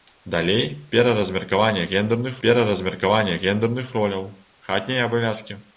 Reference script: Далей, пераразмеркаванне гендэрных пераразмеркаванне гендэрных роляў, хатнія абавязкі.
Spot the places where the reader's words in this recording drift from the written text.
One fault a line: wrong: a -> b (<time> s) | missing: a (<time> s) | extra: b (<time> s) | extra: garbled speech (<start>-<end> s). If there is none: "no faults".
no faults